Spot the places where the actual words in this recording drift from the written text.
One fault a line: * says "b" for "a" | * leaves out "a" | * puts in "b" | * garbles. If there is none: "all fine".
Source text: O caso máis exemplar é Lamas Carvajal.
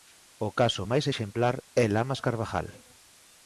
all fine